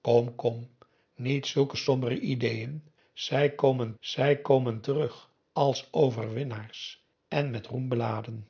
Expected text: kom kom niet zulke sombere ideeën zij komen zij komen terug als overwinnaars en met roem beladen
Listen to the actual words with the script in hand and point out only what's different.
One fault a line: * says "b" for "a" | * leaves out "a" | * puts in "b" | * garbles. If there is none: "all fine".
all fine